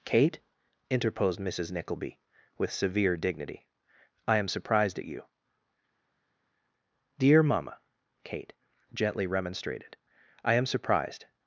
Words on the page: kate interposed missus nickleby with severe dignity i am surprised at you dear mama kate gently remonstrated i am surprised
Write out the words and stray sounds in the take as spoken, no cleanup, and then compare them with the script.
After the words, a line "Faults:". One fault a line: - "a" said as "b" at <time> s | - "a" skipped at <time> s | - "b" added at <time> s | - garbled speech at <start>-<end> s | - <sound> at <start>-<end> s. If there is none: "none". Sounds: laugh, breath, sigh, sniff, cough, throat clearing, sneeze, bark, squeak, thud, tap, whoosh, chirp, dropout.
kate interposed missus nickleby with severe dignity i am surprised at you dear mama kate gently remonstrated i am surprised
Faults:
none